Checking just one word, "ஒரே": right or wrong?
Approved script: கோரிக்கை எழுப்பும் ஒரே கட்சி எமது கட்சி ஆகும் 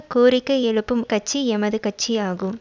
wrong